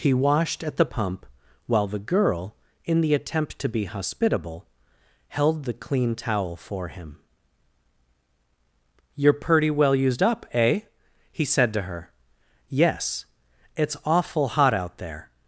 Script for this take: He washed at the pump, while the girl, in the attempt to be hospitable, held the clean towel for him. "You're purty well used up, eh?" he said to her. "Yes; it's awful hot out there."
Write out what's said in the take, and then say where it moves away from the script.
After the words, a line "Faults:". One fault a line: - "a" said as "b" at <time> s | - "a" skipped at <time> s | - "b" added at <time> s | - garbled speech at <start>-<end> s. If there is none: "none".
He washed at the pump, while the girl, in the attempt to be hospitable, held the clean towel for him. "You're pretty well used up, eh?" he said to her. "Yes; it's awful hot out there."
Faults:
- "purty" said as "pretty" at 9.3 s